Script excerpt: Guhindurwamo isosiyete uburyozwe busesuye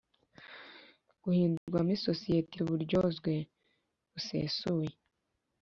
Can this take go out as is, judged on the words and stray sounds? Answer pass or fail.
fail